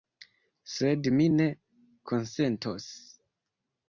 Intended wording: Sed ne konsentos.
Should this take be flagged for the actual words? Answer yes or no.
yes